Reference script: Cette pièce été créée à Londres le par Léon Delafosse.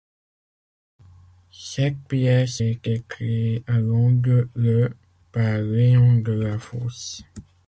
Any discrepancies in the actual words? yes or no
no